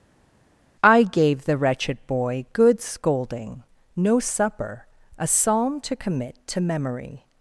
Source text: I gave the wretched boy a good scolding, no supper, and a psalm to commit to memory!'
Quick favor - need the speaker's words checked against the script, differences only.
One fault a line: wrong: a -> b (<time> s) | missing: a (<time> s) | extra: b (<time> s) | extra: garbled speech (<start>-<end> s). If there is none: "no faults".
missing: a (2.4 s)
missing: and (4.8 s)